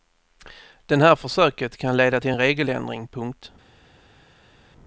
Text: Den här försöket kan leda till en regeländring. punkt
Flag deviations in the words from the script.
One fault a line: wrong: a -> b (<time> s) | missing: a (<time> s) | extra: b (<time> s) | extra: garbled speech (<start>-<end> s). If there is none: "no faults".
no faults